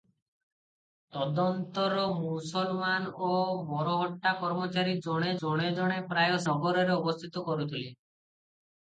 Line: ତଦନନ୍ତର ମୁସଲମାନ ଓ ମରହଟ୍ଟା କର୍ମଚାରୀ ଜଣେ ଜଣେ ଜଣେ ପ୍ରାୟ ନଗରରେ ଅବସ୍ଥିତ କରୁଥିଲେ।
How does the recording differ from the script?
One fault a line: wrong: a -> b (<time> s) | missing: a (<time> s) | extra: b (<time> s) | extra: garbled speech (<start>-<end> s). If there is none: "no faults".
no faults